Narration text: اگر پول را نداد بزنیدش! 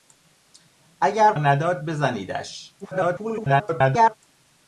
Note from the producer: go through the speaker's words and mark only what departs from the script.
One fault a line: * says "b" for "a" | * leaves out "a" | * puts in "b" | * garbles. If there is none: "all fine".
* leaves out "پول را"
* garbles